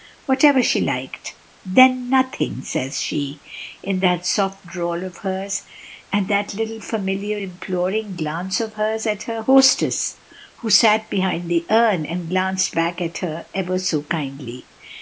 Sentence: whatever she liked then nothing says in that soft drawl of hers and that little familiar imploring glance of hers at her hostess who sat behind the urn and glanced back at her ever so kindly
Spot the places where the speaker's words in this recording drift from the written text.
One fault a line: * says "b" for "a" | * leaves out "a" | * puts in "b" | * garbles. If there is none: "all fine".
* puts in "she"